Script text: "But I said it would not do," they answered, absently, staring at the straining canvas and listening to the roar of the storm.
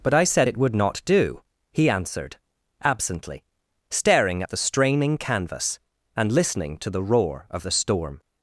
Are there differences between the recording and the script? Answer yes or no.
yes